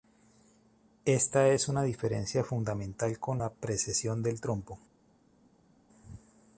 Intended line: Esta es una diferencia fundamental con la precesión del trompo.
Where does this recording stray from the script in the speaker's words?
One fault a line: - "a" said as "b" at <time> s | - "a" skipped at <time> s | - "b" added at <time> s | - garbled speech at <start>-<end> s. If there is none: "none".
none